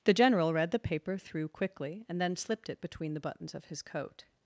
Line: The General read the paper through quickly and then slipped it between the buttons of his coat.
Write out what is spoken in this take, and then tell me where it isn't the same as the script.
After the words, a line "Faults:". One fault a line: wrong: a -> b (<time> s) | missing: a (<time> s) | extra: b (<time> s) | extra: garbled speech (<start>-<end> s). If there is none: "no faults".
The General read the paper through quickly and then slipped it between the buttons of his coat.
Faults:
no faults